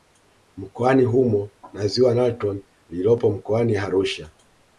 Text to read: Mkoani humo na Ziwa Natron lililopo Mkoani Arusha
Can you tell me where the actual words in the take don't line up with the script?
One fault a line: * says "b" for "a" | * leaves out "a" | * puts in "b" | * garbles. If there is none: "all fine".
all fine